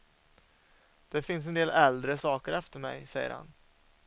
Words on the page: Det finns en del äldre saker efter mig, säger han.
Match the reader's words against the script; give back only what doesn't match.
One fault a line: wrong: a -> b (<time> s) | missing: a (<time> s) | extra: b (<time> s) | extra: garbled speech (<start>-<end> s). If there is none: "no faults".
no faults